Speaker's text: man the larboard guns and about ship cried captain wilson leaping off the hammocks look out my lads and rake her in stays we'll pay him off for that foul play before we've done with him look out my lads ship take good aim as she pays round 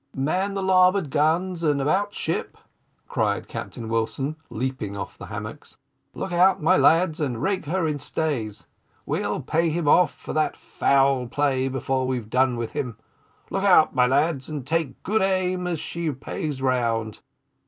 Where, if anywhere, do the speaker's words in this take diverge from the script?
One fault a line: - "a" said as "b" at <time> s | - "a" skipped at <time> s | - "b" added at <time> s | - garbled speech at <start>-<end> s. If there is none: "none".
- "ship" said as "and" at 14.5 s